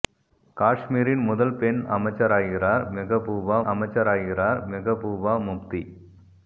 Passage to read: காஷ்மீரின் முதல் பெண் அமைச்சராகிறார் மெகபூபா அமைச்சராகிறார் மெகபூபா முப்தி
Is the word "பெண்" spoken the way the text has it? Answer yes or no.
yes